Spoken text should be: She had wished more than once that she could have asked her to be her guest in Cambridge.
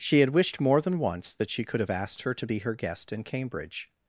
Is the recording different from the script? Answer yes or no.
no